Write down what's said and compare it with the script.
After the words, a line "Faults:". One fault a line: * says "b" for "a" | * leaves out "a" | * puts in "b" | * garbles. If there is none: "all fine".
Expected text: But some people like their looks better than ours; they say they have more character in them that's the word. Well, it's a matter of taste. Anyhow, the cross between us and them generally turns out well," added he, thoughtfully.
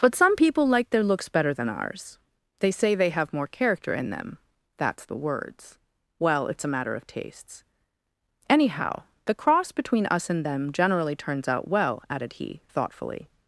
But some people like their looks better than ours; they say they have more character in them that's the words. Well, it's a matter of tastes. Anyhow, the cross between us and them generally turns out well," added he, thoughtfully.
Faults:
* says "words" for "word"
* says "tastes" for "taste"